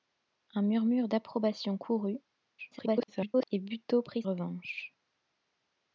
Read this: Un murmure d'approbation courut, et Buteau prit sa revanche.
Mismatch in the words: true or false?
true